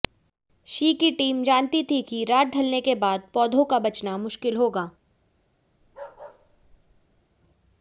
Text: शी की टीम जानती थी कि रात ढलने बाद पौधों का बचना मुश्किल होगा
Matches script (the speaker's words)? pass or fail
fail